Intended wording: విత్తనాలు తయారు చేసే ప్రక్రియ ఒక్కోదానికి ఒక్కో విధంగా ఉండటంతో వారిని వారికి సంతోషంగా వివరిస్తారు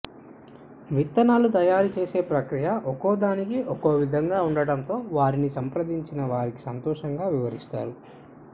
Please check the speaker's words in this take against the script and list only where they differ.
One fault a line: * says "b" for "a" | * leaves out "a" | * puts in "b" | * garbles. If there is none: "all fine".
* puts in "సంప్రదించిన"